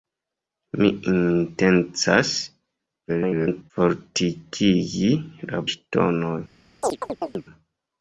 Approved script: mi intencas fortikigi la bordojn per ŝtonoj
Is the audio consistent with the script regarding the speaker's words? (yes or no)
no